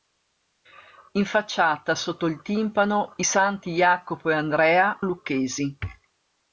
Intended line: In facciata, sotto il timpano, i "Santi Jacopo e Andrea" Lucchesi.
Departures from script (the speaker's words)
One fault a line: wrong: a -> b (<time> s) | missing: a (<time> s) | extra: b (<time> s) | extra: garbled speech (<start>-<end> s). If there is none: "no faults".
no faults